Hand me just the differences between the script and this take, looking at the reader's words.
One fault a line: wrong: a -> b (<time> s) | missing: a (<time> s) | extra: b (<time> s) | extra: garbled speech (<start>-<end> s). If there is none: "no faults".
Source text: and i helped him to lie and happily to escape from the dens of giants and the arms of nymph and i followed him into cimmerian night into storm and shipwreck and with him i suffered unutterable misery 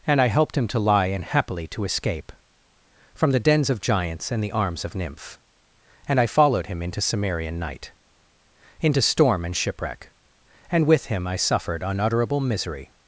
no faults